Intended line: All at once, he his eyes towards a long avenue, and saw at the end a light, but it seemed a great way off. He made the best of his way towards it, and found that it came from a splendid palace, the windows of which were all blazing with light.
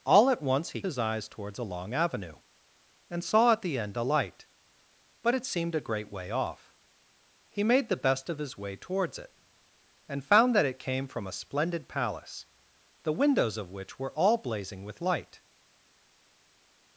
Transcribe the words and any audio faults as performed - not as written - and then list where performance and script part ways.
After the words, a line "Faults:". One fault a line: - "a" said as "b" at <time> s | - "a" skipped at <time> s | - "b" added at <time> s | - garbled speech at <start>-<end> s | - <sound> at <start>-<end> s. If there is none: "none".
All at once, he his eyes towards a long avenue, and saw at the end a light, but it seemed a great way off. He made the best of his way towards it, and found that it came from a splendid palace, the windows of which were all blazing with light.
Faults:
none